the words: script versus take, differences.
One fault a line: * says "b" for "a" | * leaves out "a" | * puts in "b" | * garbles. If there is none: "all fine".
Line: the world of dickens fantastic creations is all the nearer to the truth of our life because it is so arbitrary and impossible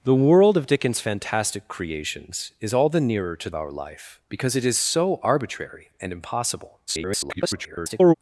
* leaves out "the truth of"
* garbles